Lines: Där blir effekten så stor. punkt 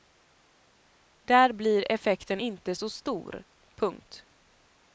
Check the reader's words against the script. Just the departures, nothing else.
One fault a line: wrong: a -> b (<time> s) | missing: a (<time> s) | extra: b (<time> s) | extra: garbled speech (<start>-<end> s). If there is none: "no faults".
extra: inte (2.4 s)